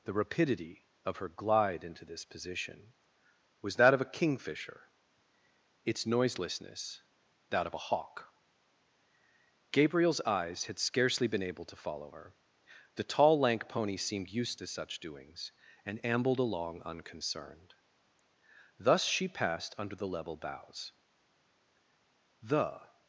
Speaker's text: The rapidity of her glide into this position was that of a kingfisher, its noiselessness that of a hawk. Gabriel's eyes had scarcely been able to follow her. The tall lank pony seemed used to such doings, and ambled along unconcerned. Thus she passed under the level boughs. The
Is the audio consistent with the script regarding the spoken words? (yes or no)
yes